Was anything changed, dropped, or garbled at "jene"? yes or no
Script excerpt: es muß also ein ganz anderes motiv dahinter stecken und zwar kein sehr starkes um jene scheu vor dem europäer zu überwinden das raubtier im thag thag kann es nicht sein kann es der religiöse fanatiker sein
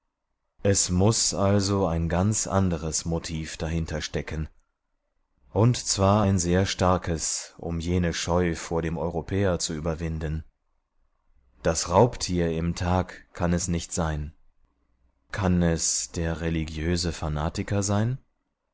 no